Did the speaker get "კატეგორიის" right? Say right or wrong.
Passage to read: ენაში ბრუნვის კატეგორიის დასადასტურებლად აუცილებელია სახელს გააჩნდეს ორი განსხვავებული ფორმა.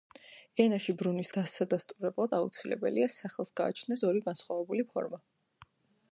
wrong